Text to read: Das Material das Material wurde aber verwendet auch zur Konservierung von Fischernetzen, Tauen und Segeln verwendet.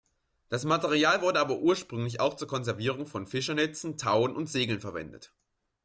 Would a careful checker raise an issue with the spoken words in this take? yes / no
yes